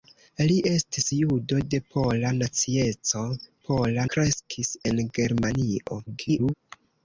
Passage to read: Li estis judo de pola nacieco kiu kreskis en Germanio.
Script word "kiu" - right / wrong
wrong